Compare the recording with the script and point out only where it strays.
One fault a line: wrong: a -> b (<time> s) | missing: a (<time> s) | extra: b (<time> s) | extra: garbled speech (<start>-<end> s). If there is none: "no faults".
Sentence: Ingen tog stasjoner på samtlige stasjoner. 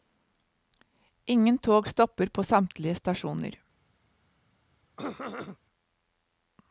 wrong: stasjoner -> stopper (1.9 s)